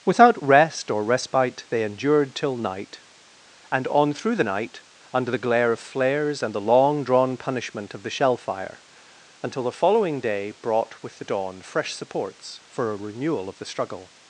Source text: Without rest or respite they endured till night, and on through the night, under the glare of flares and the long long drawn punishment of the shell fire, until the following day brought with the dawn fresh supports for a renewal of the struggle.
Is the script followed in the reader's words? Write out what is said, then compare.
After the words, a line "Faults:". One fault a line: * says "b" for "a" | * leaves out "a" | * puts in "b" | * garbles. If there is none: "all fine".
Without rest or respite they endured till night, and on through the night, under the glare of flares and the long drawn punishment of the shell fire, until the following day brought with the dawn fresh supports for a renewal of the struggle.
Faults:
* leaves out "long"